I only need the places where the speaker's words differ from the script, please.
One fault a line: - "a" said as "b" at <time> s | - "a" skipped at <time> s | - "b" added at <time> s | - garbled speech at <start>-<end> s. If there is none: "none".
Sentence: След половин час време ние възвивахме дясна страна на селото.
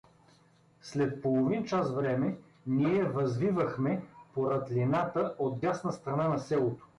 - "по рътлината от" added at 4.3 s